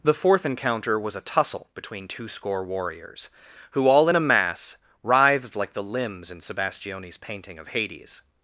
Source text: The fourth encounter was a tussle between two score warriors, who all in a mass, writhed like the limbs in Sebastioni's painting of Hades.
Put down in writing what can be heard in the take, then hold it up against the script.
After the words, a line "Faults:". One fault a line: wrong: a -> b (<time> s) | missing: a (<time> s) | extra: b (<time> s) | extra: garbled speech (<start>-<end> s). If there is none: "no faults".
The fourth encounter was a tussle between two score warriors, who all in a mass, writhed like the limbs in Sebastioni's painting of Hades.
Faults:
no faults